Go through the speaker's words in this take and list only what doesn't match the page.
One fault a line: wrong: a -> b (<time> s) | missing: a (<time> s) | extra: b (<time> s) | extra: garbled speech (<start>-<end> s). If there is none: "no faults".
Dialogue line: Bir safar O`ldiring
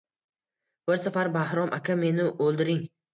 extra: Bahrom aka meni (1.4 s)